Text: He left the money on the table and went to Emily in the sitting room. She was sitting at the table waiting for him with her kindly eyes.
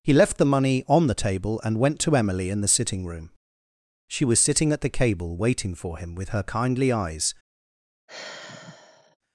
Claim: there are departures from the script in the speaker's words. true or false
true